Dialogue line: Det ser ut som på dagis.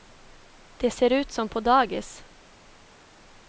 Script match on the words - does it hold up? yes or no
yes